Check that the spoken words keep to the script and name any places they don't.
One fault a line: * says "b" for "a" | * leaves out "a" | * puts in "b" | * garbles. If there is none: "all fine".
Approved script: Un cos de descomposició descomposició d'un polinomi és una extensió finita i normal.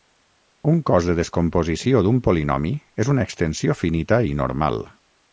* leaves out "descomposició"